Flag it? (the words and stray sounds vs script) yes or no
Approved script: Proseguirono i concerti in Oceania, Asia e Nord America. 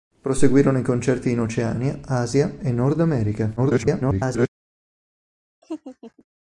yes